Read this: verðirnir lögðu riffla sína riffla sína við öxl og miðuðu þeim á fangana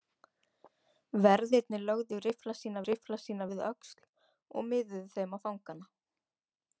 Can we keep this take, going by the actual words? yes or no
yes